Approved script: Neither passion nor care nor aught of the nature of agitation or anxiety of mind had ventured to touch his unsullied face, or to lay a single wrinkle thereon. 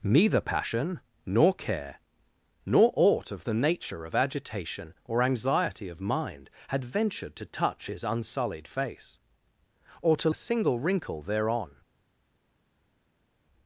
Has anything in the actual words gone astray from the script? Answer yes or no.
yes